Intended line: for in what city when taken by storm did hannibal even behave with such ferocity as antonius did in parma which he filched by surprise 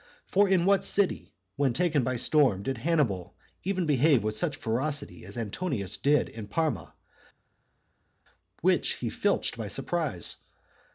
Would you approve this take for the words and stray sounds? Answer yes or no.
yes